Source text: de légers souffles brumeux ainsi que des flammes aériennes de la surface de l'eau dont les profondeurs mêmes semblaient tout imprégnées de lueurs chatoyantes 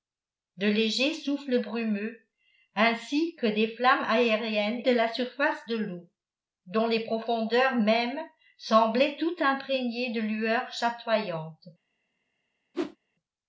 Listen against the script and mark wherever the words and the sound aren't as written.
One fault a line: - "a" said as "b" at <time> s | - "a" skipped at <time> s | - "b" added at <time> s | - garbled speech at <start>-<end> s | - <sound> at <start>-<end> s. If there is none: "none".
- whoosh at 12.7-13.0 s